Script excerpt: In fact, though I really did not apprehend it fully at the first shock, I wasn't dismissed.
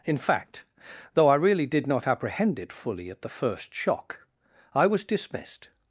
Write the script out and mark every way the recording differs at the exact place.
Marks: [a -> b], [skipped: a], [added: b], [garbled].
In fact, though I really did not apprehend it fully at the first shock, I [wasn't -> was] dismissed.